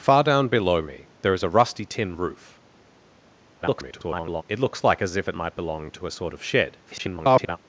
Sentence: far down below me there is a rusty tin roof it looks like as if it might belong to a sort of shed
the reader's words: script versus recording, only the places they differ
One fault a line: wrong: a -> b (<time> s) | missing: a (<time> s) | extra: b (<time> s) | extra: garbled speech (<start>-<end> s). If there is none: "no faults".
extra: garbled speech (3.6-4.4 s)
extra: garbled speech (6.9-7.6 s)